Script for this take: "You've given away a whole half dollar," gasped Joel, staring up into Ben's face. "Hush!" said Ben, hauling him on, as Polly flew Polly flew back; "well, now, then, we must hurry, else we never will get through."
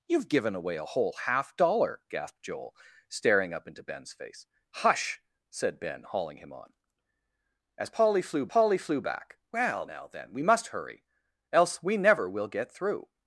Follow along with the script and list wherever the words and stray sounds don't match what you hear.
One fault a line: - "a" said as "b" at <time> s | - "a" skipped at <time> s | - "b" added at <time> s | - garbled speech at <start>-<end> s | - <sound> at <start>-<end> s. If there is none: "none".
none